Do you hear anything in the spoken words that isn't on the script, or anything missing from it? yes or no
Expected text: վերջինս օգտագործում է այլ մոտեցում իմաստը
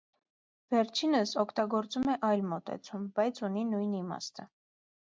yes